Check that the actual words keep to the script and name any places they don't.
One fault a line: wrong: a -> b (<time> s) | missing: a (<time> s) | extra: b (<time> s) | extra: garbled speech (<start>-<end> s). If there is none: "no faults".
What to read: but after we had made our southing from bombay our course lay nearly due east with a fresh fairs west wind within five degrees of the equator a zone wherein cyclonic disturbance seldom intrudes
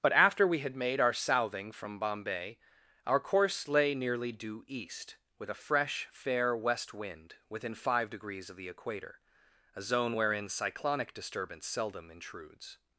wrong: fairs -> fair (6.1 s)